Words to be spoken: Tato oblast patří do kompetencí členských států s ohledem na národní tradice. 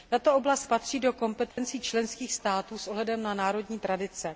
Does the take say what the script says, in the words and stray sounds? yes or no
no